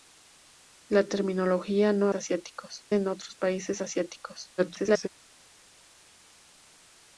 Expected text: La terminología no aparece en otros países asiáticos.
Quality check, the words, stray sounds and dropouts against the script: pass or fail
fail